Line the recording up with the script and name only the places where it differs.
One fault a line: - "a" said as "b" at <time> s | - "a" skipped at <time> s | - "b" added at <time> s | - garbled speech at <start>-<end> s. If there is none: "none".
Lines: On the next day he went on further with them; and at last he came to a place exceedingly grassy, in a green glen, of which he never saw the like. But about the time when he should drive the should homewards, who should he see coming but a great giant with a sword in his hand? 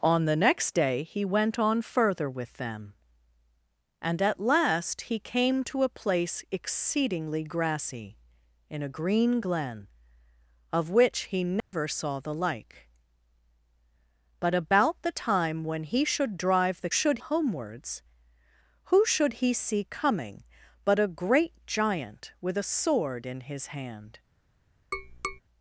none